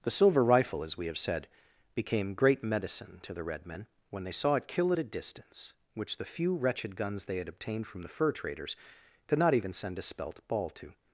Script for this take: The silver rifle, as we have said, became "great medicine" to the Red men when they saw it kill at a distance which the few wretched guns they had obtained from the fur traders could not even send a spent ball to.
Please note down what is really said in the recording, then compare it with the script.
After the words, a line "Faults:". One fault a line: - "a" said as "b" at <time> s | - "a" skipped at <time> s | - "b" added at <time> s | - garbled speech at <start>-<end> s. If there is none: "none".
The silver rifle, as we have said, became "great medicine" to the Red men when they saw it kill at a distance which the few wretched guns they had obtained from the fur traders could not even send a spelt ball to.
Faults:
- "spent" said as "spelt" at 10.0 s